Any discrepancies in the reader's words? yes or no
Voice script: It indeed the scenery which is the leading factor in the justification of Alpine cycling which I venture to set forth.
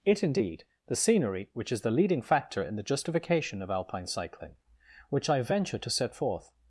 no